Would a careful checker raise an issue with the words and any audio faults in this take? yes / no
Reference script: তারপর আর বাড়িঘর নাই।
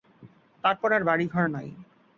no